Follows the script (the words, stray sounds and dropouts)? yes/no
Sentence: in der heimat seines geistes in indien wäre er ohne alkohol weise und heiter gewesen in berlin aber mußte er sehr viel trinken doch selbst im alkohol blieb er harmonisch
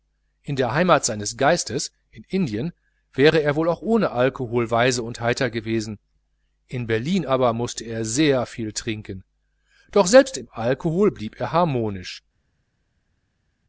no